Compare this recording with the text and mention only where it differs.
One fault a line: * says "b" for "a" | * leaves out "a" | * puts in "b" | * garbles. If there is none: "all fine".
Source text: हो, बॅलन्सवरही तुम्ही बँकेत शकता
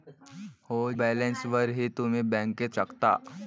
all fine